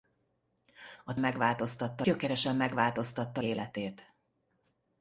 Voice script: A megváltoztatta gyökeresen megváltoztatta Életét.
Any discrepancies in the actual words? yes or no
no